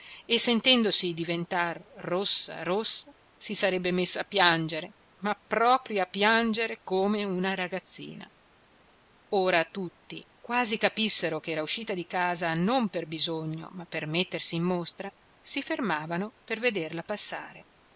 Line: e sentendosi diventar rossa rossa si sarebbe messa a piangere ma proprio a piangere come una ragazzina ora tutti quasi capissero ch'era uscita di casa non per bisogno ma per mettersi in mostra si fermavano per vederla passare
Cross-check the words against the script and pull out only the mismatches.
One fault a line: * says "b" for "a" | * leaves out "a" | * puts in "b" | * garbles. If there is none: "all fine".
all fine